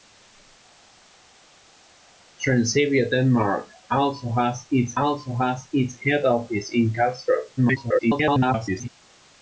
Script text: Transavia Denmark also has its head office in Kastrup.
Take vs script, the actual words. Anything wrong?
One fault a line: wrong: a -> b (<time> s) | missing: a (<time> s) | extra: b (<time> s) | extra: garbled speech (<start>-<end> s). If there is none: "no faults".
extra: also has its (5.0 s)
extra: garbled speech (7.6-8.9 s)